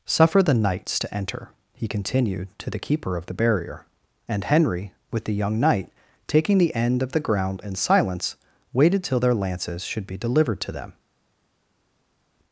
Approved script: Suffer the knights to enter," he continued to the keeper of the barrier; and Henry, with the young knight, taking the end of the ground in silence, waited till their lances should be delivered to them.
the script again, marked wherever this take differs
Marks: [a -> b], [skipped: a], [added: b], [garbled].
Suffer the knights to enter," he continued to the keeper of the barrier; and Henry, with the young knight, taking the end of the ground in silence, waited till their lances should be delivered to them.